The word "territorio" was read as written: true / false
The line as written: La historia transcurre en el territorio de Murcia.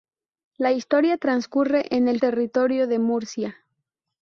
true